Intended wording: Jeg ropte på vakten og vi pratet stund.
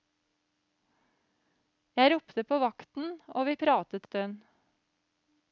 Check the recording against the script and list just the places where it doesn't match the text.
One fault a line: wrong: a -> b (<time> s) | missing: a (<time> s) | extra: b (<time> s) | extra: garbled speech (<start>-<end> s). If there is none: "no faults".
no faults